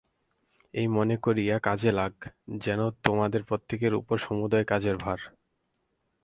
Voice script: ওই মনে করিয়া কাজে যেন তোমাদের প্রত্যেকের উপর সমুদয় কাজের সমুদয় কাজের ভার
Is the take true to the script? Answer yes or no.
no